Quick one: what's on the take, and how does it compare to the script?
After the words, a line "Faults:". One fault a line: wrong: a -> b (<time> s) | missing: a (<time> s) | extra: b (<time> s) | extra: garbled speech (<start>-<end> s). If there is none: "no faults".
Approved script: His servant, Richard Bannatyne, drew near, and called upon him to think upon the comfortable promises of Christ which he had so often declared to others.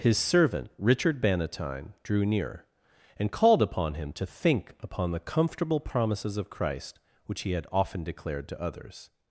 His servant, Richard Bannatyne, drew near, and called upon him to think upon the comfortable promises of Christ which he had often declared to others.
Faults:
missing: so (7.7 s)